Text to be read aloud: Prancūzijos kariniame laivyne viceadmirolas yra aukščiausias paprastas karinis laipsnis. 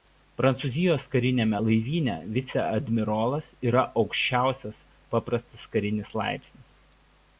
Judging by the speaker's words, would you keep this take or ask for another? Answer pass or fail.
pass